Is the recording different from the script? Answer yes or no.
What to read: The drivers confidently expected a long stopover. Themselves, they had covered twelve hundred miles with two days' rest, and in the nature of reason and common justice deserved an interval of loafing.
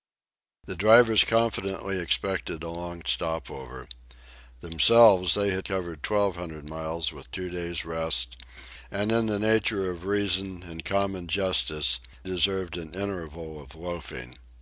no